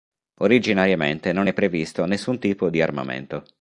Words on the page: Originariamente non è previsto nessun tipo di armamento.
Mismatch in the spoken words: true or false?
false